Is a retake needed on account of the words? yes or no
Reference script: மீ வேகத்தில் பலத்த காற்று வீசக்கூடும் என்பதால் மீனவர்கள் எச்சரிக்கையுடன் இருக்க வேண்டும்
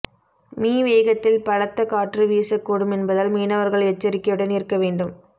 no